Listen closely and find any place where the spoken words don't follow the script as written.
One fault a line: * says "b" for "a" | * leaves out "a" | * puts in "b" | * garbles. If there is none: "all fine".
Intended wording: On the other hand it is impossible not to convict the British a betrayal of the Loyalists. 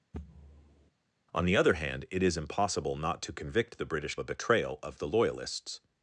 all fine